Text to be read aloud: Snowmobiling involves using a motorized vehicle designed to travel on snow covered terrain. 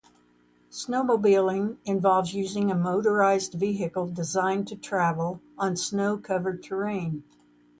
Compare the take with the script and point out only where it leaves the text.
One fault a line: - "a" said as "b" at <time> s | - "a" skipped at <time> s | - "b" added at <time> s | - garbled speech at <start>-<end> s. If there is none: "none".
none